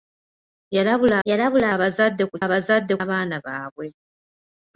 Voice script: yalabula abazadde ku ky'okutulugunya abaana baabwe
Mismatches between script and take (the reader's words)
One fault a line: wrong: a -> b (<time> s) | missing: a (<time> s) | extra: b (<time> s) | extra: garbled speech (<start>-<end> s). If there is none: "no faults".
extra: yalabula (1.3 s)
wrong: ky'okutulugunya -> abazadde (2.4 s)